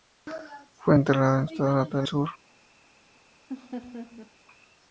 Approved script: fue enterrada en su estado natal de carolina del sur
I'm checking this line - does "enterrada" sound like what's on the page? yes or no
yes